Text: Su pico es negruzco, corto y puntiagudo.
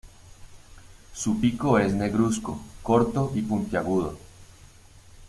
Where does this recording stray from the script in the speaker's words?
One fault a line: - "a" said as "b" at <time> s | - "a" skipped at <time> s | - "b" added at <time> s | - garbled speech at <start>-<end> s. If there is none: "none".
none